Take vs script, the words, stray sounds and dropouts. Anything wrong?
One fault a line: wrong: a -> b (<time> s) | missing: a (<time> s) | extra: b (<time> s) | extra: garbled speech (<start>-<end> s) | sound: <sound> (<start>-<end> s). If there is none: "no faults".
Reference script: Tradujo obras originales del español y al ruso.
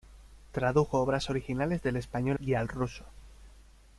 no faults